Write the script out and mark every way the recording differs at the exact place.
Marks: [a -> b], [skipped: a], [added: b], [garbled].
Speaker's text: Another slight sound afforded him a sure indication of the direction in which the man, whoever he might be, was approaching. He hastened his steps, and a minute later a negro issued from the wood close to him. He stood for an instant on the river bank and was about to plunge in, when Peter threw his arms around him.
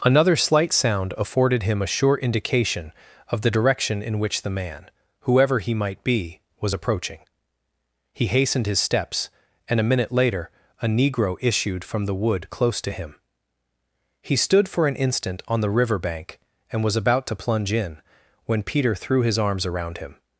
Another slight sound afforded him a sure indication of the direction in which the man, whoever he might be, was approaching. He hastened his steps, and a minute later a negro issued from the wood close to him. He stood for an instant on the river bank and was about to plunge in, when Peter threw his arms around him.